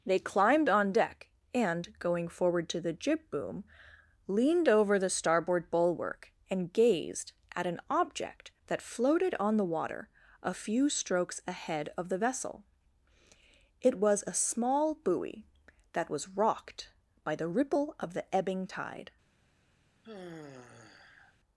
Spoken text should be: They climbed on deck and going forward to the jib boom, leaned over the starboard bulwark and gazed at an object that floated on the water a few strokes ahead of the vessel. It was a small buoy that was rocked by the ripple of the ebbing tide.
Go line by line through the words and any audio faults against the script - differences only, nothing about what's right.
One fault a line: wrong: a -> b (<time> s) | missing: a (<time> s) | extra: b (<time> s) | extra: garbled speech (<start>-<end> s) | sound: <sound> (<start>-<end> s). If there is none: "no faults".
sound: sigh (20.0-21.4 s)